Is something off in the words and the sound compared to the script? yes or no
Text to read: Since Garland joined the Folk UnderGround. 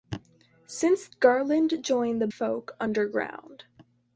no